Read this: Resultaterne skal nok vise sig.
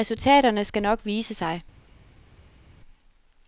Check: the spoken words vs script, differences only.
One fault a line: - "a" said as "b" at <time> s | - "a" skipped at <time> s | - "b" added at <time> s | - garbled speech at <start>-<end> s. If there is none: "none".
none